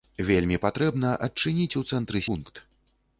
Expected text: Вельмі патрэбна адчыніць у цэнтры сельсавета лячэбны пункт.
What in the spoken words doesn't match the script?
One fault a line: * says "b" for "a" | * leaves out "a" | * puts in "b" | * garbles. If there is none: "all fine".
* leaves out "сельсавета лячэбны"